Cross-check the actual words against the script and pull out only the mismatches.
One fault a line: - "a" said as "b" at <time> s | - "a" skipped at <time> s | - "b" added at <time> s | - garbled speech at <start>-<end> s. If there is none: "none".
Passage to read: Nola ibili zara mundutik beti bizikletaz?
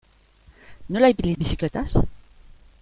- "zara mundutik beti" skipped at 1.3 s